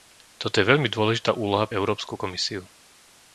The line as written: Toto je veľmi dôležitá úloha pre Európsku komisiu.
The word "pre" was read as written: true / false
false